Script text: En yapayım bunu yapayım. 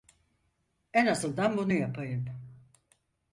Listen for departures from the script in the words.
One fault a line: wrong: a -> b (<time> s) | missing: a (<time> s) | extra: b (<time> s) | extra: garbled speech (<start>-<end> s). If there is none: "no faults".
wrong: yapayım -> azından (1.1 s)